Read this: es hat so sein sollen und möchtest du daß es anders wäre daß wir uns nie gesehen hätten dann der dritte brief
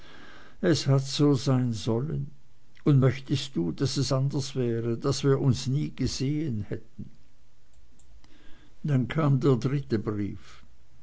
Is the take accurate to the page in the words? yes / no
no